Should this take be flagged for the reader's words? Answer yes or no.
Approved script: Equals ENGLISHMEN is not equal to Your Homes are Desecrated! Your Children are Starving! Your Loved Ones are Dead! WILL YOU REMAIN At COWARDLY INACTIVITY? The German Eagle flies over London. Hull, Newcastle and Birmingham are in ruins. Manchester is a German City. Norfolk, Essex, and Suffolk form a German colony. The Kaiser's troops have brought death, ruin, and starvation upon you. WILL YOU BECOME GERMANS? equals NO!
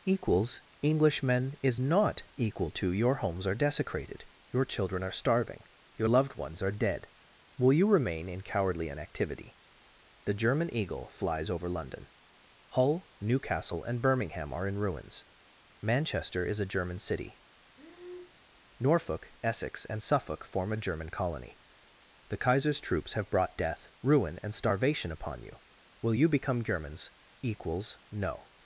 yes